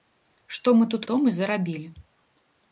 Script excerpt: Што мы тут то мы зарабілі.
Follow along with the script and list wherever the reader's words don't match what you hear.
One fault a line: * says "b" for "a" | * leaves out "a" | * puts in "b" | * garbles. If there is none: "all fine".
all fine